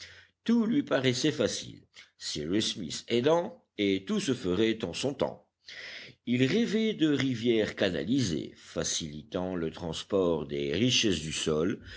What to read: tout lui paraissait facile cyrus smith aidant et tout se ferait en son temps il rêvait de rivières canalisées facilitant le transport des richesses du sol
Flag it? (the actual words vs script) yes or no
no